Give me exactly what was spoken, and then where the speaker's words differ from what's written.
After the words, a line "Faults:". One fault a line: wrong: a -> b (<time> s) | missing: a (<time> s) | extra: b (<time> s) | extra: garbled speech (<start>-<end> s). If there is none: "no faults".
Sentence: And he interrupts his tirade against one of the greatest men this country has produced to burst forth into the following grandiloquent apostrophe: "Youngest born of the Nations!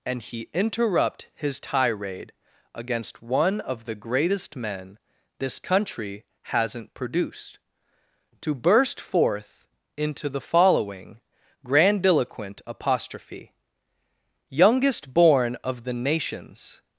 And he interrupt his tirade against one of the greatest men this country hasn't produced to burst forth into the following grandiloquent apostrophe: "Youngest born of the Nations!
Faults:
wrong: interrupts -> interrupt (0.5 s)
wrong: has -> hasn't (6.4 s)